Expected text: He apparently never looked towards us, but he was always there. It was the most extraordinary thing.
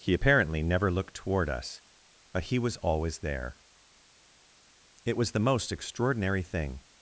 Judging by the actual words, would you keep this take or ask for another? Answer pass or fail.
fail